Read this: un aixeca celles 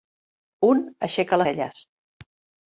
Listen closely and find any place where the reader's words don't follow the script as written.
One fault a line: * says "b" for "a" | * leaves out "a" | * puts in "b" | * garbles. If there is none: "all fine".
all fine